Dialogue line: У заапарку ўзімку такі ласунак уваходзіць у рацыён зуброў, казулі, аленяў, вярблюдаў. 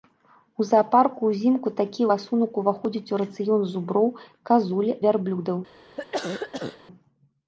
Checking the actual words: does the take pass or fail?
fail